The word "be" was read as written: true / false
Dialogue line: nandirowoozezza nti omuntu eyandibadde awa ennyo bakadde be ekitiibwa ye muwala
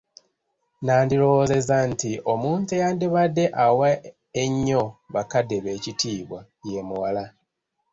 true